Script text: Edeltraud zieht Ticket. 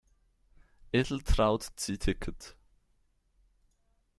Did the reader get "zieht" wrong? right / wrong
right